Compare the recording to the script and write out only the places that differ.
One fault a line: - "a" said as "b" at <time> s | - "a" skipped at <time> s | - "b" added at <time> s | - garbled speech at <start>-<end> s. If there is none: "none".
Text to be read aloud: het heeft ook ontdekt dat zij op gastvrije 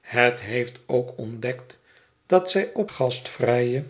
none